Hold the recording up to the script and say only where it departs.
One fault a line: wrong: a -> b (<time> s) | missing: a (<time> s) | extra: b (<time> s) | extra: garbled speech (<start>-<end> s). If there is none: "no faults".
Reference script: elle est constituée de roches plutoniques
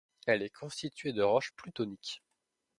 no faults